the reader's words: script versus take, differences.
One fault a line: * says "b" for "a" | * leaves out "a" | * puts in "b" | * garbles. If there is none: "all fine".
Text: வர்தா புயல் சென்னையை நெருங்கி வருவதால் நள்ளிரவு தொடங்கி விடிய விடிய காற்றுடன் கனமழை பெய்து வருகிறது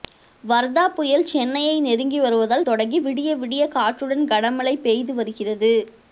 * leaves out "நள்ளிரவு"